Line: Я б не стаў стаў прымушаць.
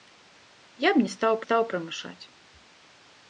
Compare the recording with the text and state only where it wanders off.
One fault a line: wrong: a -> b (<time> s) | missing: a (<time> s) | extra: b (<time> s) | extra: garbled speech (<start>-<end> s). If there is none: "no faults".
no faults